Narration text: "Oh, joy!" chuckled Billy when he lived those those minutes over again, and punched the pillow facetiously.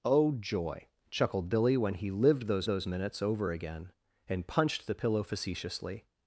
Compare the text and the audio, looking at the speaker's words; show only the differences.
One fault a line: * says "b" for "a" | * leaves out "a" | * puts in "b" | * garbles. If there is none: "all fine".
all fine